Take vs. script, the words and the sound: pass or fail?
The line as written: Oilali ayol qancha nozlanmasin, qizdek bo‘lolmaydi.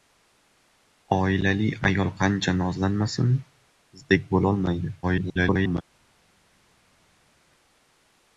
fail